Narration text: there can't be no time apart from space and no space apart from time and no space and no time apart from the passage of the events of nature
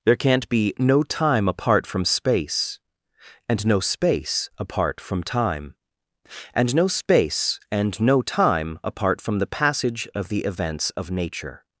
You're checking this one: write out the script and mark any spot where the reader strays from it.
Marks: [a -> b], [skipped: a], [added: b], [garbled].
there can't be no time apart from space and no space apart from time and no space and no time apart from the passage of the events of nature